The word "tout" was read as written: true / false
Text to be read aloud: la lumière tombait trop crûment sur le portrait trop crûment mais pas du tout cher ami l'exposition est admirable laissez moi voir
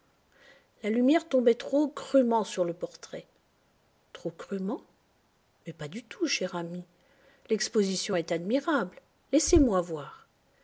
true